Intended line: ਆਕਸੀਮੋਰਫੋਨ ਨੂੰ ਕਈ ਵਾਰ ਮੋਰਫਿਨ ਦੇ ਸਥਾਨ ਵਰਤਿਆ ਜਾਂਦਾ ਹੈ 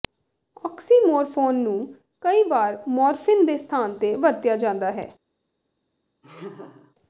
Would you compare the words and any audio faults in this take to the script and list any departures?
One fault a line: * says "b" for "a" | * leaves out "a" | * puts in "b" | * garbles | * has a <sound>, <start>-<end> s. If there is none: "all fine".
* puts in "ਤੇ"
* has a laugh, 6.2-7.0 s